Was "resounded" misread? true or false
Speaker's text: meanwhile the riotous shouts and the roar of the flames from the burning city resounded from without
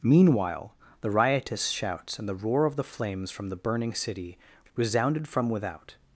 false